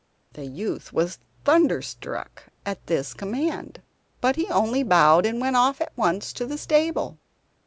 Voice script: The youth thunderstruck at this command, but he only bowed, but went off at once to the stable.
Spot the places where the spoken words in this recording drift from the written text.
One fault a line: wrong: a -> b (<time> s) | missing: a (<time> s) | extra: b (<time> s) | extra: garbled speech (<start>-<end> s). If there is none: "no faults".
extra: was (0.9 s)
wrong: but -> and (5.3 s)